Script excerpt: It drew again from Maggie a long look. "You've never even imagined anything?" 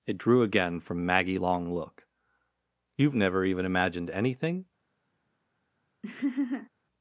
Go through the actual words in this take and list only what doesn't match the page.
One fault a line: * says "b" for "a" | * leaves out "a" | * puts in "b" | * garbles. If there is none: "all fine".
* leaves out "a"